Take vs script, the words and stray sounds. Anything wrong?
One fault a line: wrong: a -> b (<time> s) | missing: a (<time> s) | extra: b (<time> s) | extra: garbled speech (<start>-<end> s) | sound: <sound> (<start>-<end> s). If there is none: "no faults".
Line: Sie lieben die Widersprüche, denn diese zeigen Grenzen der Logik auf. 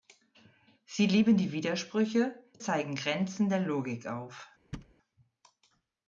missing: denn diese (2.4 s)
sound: thud (4.7-4.9 s)